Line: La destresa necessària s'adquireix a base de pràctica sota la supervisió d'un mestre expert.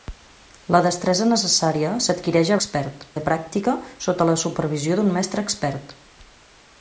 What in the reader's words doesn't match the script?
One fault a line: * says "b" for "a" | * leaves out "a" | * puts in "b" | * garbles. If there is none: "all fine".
* says "expert" for "base"